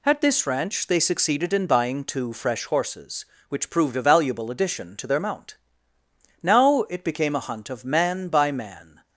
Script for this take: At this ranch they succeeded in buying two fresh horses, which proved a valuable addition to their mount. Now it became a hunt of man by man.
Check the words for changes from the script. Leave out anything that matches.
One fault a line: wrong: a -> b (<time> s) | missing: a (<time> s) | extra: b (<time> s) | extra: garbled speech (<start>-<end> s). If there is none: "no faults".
no faults